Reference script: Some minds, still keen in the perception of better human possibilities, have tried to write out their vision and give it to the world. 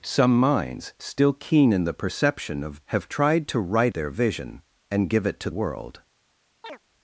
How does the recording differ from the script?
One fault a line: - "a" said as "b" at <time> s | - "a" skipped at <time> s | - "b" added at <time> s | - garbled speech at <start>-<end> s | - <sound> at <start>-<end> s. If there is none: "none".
- "better human possibilities" skipped at 2.8 s
- "out" skipped at 3.9 s
- "the" skipped at 5.5 s
- chirp at 6.6-6.8 s